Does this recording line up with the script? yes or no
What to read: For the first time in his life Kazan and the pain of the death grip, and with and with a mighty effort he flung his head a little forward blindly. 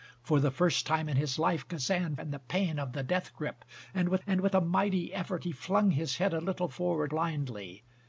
yes